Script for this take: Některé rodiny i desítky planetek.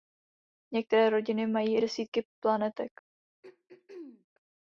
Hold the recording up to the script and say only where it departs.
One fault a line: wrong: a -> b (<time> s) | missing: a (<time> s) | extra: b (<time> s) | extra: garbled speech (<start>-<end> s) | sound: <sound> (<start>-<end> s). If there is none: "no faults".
extra: mají (1.5 s)
sound: throat clearing (3.4-4.3 s)